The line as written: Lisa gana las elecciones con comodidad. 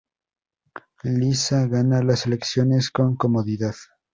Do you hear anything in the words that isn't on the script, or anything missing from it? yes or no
no